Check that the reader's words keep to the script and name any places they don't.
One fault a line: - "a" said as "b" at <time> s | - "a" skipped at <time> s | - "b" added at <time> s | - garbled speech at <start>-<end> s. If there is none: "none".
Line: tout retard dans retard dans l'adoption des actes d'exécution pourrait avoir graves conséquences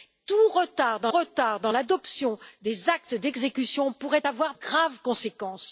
none